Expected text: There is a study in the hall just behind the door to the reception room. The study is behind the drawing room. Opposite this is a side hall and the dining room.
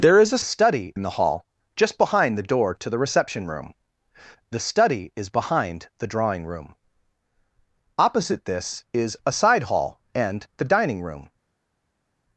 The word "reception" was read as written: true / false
true